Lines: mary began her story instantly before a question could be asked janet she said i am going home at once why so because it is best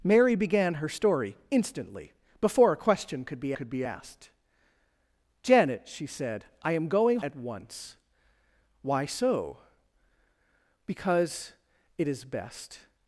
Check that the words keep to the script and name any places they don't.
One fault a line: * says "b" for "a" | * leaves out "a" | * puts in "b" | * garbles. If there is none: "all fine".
* puts in "could be"
* leaves out "home"